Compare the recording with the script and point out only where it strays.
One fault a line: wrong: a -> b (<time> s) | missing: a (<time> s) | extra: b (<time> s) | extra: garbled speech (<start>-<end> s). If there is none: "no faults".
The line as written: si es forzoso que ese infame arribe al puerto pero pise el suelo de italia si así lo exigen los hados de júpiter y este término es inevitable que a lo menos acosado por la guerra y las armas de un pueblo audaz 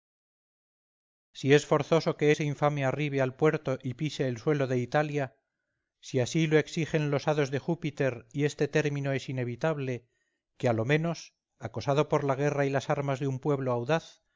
wrong: pero -> y (3.8 s)